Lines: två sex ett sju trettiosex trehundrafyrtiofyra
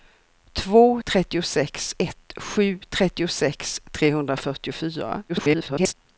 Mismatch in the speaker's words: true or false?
true